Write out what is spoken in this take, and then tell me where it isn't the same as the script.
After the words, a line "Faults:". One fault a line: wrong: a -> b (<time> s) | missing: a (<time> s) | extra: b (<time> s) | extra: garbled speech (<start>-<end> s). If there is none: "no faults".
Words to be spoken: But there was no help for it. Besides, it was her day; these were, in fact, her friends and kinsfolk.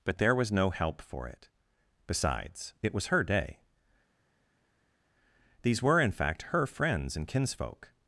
But there was no help for it. Besides, it was her day; these were, in fact, her friends and kinsfolk.
Faults:
no faults